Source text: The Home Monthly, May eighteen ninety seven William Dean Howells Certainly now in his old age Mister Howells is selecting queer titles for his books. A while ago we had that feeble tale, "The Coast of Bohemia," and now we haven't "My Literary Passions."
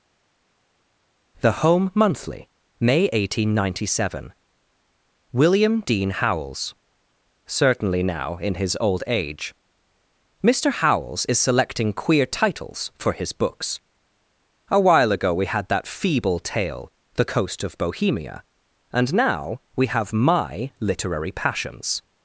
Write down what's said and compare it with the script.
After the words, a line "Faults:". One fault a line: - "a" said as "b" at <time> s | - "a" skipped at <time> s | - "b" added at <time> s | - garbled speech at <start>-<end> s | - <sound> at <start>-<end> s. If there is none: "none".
The Home Monthly, May eighteen ninety seven William Dean Howells Certainly now in his old age Mister Howells is selecting queer titles for his books. A while ago we had that feeble tale, "The Coast of Bohemia," and now we have "My Literary Passions."
Faults:
- "haven't" said as "have" at 19.9 s